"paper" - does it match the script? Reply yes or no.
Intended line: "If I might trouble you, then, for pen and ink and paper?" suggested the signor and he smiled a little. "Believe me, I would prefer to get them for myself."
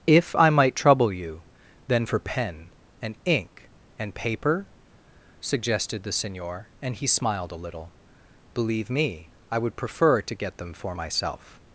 yes